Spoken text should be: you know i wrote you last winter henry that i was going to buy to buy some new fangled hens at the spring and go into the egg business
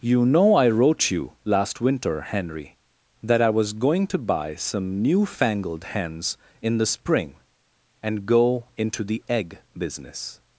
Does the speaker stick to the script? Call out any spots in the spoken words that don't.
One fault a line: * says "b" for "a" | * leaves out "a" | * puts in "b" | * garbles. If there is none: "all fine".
* leaves out "to buy"
* says "in" for "at"